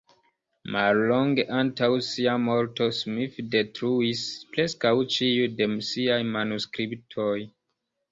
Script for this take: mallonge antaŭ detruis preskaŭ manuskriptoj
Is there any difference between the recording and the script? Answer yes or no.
yes